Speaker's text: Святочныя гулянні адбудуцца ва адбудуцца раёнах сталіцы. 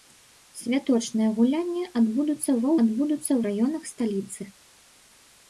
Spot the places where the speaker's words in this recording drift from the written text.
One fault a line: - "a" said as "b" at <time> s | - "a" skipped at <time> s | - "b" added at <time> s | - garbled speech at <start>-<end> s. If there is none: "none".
none